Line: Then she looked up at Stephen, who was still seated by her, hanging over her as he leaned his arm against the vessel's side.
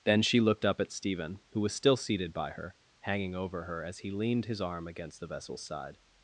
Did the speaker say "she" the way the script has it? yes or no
yes